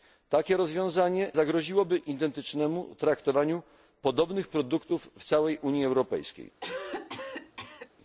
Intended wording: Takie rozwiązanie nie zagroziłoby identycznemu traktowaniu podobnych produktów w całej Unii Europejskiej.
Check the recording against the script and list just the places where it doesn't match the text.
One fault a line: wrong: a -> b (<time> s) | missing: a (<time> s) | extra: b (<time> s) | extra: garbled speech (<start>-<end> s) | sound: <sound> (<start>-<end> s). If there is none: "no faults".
missing: nie (1.3 s)
sound: cough (6.6-7.9 s)